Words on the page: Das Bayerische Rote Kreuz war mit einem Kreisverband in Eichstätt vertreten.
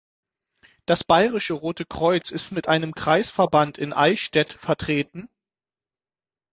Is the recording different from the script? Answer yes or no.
yes